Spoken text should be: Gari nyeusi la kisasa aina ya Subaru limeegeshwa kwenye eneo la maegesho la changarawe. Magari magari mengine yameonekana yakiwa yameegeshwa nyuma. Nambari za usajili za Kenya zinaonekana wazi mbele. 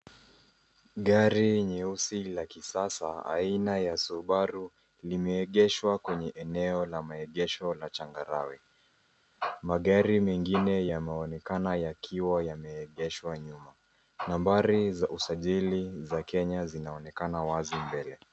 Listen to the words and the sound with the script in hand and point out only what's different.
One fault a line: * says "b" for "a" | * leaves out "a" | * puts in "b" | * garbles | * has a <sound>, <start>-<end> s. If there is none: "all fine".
* leaves out "magari"